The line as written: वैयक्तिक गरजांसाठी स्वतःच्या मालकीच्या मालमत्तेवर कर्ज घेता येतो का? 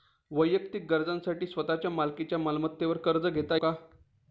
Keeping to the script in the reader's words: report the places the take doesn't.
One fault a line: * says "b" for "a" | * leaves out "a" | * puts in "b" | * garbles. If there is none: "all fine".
* leaves out "येतो"